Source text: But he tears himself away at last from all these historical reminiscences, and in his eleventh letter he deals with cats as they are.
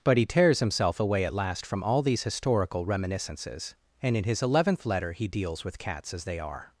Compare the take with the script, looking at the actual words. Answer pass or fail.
pass